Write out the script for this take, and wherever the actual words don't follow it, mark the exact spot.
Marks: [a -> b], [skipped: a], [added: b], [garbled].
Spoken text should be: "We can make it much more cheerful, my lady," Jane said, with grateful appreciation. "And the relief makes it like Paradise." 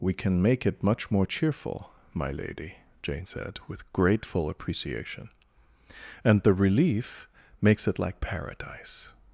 "We can make it much more cheerful, my lady," Jane said, with grateful appreciation. "And the relief makes it like Paradise."